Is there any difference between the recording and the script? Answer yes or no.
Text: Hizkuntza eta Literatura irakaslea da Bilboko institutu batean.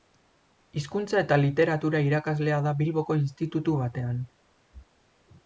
no